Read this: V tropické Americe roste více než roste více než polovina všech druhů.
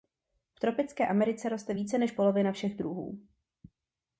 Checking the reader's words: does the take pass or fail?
fail